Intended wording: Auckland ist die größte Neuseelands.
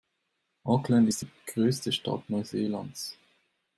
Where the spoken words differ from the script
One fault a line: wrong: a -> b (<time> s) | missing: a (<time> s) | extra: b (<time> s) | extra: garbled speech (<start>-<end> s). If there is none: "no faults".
extra: Stadt (1.9 s)